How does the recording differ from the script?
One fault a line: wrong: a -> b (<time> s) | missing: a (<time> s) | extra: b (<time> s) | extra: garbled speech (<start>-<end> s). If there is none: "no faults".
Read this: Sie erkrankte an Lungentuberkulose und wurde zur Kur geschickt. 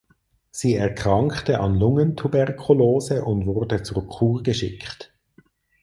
no faults